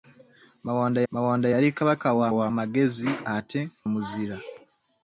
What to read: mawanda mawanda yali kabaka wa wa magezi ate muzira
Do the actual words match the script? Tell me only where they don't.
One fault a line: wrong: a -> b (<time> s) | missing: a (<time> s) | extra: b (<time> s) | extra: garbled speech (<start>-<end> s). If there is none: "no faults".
no faults